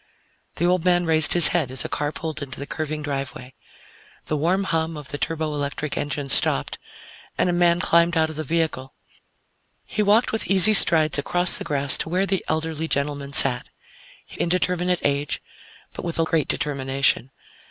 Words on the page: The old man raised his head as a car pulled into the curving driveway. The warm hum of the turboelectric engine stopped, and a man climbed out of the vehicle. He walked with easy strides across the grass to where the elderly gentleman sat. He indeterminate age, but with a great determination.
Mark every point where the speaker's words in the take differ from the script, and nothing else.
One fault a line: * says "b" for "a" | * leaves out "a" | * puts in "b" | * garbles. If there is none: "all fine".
all fine